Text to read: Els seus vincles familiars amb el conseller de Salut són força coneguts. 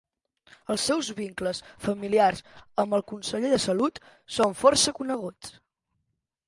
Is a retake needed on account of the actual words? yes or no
no